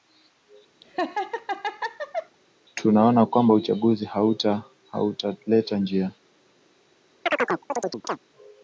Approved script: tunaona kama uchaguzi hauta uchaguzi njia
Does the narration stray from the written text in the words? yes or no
yes